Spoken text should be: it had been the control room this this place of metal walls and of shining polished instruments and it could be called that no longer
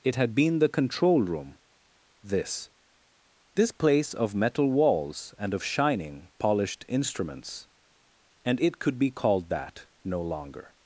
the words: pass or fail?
pass